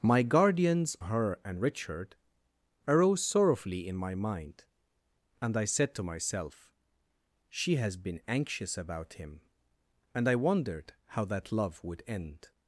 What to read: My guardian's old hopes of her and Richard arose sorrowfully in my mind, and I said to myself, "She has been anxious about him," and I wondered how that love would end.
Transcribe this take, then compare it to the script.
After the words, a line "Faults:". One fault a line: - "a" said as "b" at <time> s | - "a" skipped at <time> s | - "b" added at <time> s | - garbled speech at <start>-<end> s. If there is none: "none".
My guardian's her and Richard arose sorrowfully in my mind, and I said to myself, "She has been anxious about him," and I wondered how that love would end.
Faults:
- "old hopes of" skipped at 1.0 s